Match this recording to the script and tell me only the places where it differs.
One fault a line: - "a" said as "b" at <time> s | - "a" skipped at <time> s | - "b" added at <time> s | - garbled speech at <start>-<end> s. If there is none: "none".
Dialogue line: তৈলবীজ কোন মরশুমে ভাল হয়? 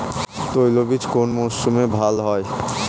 none